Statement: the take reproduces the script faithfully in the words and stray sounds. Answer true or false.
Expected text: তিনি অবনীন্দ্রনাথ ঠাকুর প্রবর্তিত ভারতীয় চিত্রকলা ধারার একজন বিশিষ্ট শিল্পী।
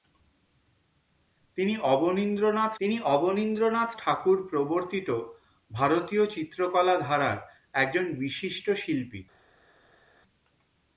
false